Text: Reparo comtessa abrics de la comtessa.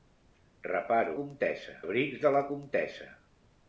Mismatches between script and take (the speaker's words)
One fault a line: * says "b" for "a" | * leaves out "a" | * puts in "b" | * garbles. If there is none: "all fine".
all fine